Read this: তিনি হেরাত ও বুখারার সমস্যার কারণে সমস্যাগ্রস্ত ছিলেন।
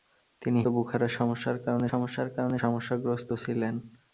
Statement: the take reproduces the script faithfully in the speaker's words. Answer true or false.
false